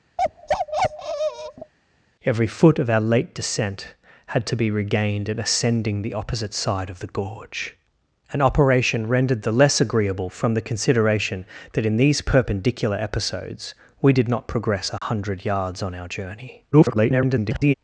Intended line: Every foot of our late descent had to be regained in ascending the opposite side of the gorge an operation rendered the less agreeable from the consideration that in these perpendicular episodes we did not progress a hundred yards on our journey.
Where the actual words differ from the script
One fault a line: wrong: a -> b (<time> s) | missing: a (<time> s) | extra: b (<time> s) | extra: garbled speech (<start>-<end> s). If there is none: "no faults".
extra: garbled speech (16.7-17.7 s)